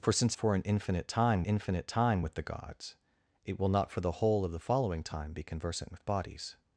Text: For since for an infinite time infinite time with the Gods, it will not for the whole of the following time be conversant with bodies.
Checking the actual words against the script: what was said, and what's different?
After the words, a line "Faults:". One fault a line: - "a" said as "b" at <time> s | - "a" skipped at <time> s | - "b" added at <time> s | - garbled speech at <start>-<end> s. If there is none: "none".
For since for an infinite time infinite time with the Gods, it will not for the whole of the following time be conversant with bodies.
Faults:
none